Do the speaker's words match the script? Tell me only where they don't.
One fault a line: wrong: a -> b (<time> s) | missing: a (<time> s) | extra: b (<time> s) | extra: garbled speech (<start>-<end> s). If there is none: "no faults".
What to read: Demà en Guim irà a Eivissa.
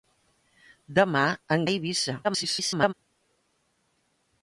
missing: Guim irà (1.7 s)
extra: garbled speech (2.2-2.9 s)